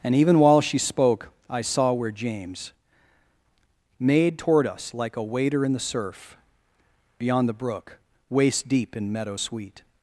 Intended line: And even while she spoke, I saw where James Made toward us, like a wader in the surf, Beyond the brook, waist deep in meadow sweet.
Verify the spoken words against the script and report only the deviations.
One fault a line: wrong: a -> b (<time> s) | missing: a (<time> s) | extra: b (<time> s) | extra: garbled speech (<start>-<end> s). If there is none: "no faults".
no faults